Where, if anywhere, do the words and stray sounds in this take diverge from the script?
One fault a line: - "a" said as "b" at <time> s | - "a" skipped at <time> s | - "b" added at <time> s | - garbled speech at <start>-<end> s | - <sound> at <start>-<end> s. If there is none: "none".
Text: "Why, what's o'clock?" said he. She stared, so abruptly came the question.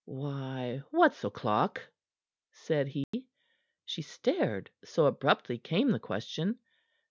- dropout at 3.0-3.1 s